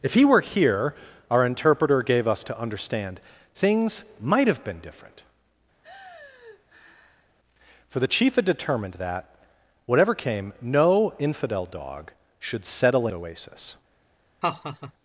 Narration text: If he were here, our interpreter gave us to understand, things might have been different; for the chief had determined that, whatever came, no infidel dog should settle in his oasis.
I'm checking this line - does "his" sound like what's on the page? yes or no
no